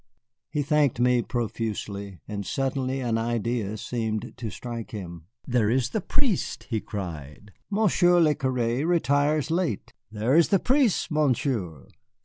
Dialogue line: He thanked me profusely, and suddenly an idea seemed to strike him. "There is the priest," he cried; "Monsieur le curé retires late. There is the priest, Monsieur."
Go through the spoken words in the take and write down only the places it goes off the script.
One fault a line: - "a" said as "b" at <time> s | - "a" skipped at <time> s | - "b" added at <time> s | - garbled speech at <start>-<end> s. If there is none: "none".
none